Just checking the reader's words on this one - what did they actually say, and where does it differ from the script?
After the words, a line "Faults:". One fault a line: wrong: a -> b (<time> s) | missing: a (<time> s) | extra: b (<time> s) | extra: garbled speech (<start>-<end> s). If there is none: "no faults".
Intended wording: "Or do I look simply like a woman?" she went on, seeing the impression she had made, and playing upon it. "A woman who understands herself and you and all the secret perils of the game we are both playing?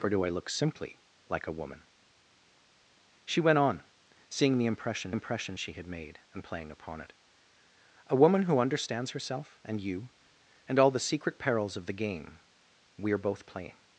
"Or do I look simply like a woman?" she went on, seeing the impression impression she had made, and playing upon it. "A woman who understands herself and you and all the secret perils of the game we are both playing?
Faults:
extra: impression (5.1 s)